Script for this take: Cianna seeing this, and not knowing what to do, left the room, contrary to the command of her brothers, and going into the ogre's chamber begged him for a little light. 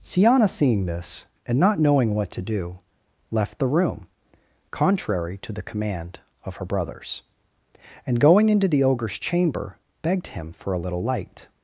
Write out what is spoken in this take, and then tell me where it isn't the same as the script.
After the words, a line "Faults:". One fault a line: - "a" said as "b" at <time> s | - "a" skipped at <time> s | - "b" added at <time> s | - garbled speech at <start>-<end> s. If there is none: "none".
Cianna seeing this, and not knowing what to do, left the room, contrary to the command of her brothers, and going into the ogre's chamber begged him for a little light.
Faults:
none